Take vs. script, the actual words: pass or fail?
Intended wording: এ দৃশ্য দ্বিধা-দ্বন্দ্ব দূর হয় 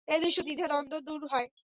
pass